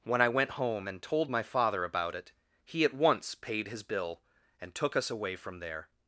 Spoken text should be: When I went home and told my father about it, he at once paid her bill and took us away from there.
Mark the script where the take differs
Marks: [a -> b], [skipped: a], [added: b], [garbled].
When I went home and told my father about it, he at once paid [her -> his] bill and took us away from there.